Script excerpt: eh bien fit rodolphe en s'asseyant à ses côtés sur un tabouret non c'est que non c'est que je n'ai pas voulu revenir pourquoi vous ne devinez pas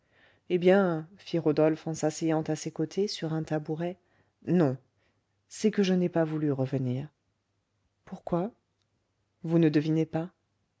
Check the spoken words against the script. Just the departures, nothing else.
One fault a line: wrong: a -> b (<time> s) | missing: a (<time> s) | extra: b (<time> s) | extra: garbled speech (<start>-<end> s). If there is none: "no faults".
missing: non c'est que (5.8 s)